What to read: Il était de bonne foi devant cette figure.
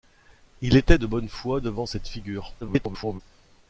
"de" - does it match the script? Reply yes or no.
yes